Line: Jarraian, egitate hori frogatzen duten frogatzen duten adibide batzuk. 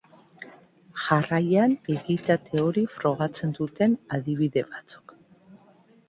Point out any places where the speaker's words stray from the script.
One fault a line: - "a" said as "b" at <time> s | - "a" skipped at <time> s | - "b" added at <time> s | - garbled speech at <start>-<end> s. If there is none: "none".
- "frogatzen duten" skipped at 4.0 s